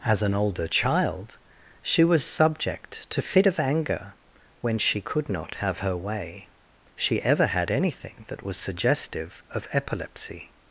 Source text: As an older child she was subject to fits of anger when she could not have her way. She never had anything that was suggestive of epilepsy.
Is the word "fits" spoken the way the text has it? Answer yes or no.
no